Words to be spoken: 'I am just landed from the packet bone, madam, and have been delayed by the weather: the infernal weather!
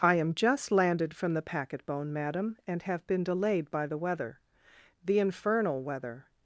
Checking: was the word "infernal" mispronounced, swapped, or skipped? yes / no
no